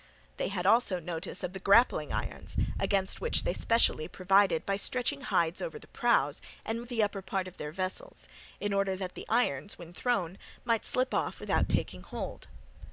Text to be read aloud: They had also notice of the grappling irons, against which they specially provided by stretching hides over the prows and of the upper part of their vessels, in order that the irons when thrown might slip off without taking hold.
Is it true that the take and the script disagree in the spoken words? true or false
false